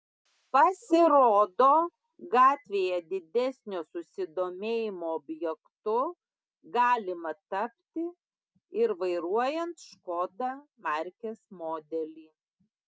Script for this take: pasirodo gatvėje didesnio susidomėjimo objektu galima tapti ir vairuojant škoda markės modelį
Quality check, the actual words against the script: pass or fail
pass